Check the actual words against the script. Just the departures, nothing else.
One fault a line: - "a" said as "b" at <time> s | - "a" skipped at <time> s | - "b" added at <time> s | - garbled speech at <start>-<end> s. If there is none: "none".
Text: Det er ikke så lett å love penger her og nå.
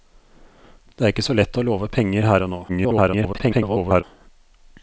- garbled speech at 2.7-4.0 s